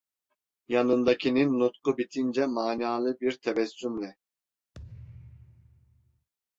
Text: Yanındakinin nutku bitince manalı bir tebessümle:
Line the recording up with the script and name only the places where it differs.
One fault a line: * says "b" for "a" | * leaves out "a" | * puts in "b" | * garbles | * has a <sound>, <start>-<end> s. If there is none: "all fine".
* has a thud, 4.7-6.3 s